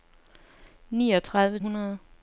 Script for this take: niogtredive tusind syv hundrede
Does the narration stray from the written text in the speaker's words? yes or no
yes